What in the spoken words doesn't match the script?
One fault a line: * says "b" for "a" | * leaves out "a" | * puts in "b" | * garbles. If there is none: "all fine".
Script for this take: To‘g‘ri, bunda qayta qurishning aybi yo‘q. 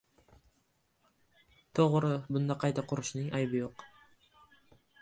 all fine